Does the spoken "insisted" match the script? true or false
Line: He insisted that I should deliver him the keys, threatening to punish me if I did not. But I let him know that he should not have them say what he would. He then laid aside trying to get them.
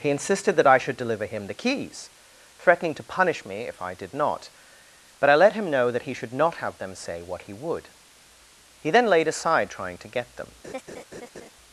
true